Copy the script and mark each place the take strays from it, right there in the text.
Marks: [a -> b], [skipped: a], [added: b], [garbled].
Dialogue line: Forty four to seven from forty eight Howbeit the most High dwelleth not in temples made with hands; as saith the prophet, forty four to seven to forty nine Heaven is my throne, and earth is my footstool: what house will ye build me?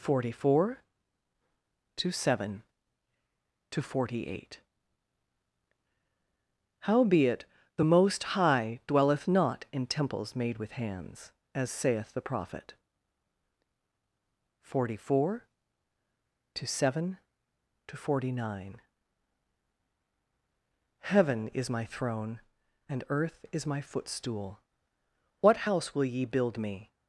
Forty four to seven [from -> to] forty eight Howbeit the most High dwelleth not in temples made with hands; as saith the prophet, forty four to seven to forty nine Heaven is my throne, and earth is my footstool: what house will ye build me?